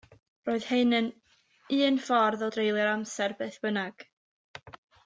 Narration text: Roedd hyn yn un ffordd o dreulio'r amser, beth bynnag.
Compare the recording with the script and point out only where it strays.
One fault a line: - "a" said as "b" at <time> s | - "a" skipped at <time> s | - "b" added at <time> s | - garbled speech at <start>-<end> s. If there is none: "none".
none